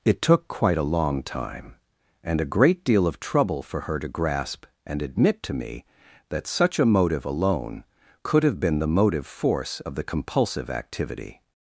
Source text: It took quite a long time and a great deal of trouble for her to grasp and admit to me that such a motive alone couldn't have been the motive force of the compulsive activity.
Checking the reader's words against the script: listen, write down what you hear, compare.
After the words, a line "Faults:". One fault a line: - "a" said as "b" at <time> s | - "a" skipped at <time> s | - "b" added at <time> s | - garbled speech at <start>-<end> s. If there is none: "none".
It took quite a long time and a great deal of trouble for her to grasp and admit to me that such a motive alone could have been the motive force of the compulsive activity.
Faults:
- "couldn't" said as "could" at 8.2 s